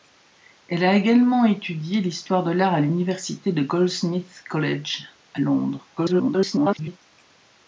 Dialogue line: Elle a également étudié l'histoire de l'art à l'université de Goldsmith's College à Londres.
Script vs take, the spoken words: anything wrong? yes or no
yes